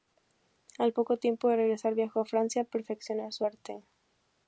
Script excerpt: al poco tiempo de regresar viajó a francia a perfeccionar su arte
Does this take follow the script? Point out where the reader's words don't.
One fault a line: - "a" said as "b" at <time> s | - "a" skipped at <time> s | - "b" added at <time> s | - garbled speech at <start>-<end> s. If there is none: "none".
none